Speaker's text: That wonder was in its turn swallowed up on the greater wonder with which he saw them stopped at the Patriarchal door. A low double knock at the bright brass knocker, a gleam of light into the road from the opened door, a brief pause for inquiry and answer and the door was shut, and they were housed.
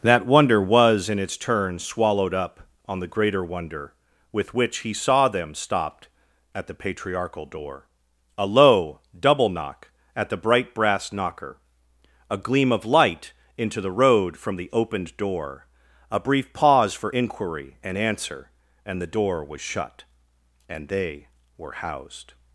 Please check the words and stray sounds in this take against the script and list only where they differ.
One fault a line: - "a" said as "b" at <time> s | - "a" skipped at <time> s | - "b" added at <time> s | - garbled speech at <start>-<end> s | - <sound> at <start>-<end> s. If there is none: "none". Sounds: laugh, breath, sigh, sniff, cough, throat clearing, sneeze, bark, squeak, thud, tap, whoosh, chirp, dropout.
none